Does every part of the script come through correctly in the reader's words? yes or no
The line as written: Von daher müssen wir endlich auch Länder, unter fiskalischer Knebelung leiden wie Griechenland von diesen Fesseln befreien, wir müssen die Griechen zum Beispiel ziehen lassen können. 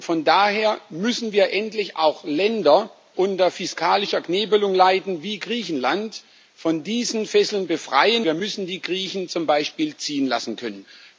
yes